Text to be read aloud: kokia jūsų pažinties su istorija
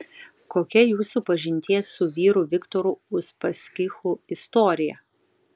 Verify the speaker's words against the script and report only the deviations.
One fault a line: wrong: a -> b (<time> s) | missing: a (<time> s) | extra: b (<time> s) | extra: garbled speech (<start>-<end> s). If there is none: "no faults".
extra: vyru viktoru uspaskichu (2.2 s)